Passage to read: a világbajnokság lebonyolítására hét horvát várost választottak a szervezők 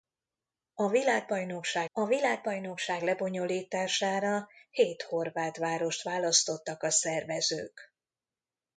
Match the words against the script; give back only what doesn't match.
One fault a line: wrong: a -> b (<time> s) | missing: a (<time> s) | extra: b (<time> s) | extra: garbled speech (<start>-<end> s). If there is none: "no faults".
extra: a világbajnokság (1.9 s)